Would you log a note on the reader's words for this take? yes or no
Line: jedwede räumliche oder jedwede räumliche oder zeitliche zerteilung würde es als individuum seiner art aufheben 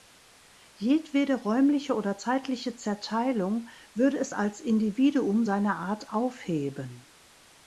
yes